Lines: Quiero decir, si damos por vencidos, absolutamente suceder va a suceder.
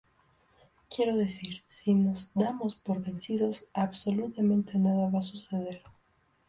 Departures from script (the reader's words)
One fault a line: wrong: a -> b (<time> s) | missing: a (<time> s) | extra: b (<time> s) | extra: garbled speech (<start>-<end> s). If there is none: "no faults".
extra: nos (1.9 s)
wrong: suceder -> nada (4.8 s)